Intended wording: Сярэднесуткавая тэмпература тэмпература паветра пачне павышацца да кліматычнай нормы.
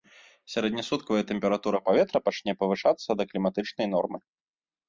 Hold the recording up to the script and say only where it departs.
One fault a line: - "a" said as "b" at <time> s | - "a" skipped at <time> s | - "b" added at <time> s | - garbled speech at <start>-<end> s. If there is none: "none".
- "тэмпература" skipped at 1.8 s